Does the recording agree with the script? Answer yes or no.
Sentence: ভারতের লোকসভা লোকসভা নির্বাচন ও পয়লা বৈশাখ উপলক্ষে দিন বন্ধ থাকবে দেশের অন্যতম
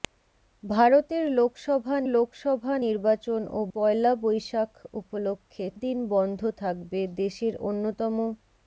yes